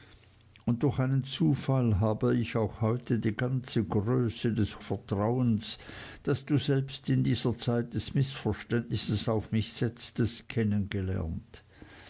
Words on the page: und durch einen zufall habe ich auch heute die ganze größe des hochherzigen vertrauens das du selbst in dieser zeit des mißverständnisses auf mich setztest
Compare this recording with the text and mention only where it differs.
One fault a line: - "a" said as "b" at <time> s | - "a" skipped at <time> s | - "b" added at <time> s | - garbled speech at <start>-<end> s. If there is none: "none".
- "hochherzigen" skipped at 4.8 s